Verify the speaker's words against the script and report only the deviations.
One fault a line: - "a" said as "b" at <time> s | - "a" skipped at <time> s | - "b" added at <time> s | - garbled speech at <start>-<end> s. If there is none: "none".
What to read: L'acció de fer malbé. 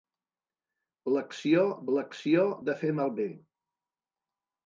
- "l'acció" added at 2.0 s